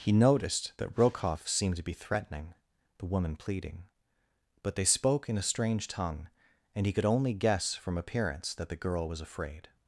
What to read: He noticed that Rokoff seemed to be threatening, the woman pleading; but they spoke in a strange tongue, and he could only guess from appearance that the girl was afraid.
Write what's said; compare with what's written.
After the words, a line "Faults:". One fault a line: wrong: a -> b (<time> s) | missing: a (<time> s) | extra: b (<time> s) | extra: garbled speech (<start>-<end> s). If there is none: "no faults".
He noticed that Rokoff seemed to be threatening, the woman pleading; but they spoke in a strange tongue, and he could only guess from appearance that the girl was afraid.
Faults:
no faults